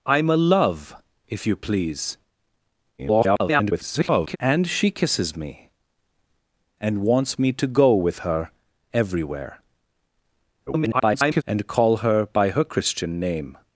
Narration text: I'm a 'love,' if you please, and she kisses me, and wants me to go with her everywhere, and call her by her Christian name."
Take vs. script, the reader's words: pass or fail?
fail